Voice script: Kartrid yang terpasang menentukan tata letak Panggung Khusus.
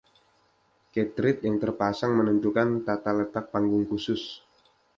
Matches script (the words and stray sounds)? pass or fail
pass